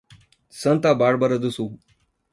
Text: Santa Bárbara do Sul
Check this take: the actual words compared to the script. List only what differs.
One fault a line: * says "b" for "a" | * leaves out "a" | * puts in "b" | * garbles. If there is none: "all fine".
all fine